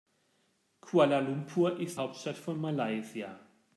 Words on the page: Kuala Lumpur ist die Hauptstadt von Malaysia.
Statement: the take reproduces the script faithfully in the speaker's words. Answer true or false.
false